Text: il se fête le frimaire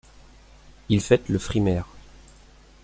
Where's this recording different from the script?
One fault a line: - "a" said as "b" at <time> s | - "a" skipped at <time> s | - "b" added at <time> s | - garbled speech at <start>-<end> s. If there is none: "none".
- "se" skipped at 1.0 s